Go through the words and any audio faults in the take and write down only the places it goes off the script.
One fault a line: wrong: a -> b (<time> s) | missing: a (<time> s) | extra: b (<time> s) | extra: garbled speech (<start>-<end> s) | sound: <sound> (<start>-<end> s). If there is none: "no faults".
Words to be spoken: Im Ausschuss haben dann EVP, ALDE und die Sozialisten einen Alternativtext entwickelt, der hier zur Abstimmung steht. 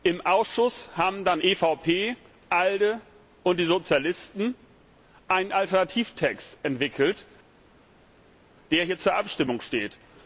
no faults